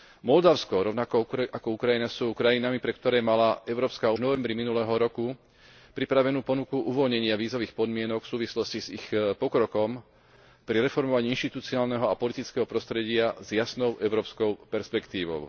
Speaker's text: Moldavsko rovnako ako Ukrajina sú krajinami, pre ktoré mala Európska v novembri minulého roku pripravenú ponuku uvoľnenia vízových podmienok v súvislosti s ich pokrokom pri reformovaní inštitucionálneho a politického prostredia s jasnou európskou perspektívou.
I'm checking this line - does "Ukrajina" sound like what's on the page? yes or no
yes